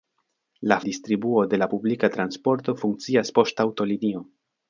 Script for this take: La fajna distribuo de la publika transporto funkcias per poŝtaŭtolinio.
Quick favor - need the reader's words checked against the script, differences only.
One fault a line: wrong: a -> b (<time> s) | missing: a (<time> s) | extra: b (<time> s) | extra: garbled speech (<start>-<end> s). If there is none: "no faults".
missing: fajna (0.8 s)
missing: per (3.3 s)